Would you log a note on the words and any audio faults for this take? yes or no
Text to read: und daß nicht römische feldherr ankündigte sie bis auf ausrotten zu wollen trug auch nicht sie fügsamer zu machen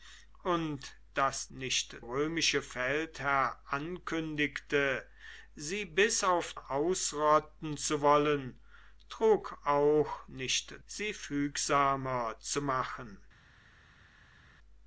no